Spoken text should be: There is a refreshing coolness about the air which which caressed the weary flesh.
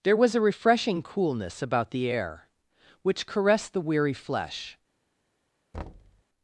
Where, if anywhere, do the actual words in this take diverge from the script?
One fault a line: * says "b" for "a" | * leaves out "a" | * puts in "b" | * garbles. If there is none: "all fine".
* says "was" for "is"
* leaves out "which"